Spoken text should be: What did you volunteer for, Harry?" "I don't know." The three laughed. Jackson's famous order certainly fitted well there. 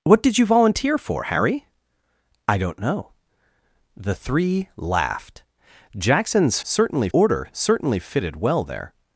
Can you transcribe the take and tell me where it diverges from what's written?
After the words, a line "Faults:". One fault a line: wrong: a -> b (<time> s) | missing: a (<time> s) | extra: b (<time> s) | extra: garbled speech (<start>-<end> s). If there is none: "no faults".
What did you volunteer for, Harry?" "I don't know." The three laughed. Jackson's certainly order certainly fitted well there.
Faults:
wrong: famous -> certainly (6.6 s)